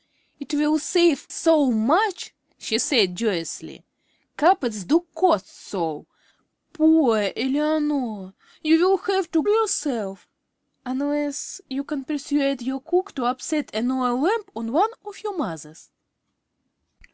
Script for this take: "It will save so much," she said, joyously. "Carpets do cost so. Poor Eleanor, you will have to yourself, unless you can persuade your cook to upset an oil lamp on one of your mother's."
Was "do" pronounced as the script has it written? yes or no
yes